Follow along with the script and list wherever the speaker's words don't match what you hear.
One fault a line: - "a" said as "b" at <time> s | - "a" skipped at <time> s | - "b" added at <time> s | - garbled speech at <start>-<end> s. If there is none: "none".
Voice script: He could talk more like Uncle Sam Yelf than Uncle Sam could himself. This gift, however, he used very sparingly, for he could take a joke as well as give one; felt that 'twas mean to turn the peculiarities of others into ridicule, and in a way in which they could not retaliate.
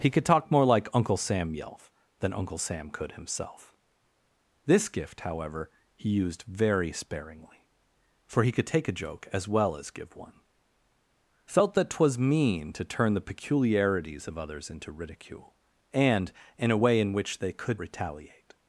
- "not" skipped at 17.8 s